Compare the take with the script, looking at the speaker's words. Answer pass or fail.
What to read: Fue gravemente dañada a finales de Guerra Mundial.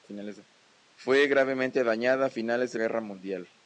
pass